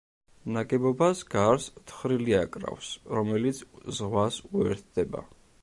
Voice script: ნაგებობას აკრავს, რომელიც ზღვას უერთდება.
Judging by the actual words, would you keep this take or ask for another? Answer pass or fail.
fail